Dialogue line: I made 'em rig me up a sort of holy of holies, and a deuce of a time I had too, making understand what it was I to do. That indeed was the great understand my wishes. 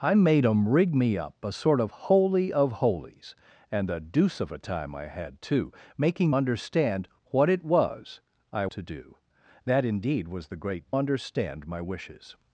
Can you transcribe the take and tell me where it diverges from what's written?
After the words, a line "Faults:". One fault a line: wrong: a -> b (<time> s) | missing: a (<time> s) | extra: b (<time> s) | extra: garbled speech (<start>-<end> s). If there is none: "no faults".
I made 'em rig me up a sort of holy of holies, and a deuce of a time I had too, making understand what it was I to do. That indeed was the great understand my wishes.
Faults:
no faults